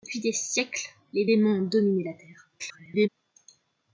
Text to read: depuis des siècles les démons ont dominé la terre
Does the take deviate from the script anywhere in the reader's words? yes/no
yes